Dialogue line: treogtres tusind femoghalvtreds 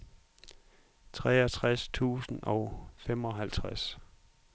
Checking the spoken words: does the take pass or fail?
fail